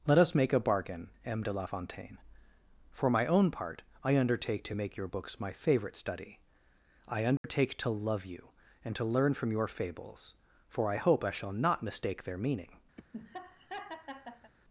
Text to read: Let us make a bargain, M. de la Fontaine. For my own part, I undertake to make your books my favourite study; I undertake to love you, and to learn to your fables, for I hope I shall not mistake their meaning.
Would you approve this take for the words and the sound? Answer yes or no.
no